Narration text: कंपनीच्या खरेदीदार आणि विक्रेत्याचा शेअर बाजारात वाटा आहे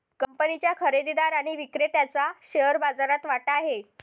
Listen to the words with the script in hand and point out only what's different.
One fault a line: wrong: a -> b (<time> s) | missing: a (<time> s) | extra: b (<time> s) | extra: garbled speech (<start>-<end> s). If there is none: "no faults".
no faults